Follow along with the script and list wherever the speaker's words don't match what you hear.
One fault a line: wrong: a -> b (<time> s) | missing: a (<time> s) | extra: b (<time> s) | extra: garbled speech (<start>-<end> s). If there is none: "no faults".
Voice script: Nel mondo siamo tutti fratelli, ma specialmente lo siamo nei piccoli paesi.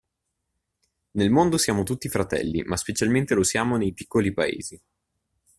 no faults